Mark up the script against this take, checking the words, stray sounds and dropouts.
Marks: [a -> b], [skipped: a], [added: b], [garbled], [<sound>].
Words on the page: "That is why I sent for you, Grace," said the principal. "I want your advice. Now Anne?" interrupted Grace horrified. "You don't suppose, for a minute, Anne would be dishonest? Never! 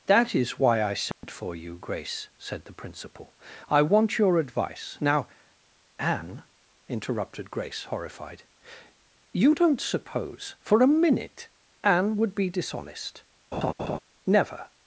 "That is why I sent [dropout] for you, Grace," said the principal. "I want your advice. Now Anne?" interrupted Grace horrified. "You don't suppose, for a minute, Anne would be dishonest? [laugh] Never!